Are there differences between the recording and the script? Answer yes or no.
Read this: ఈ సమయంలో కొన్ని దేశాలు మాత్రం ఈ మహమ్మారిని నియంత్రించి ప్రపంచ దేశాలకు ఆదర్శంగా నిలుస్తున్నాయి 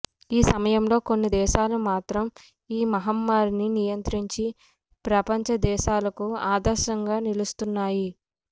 no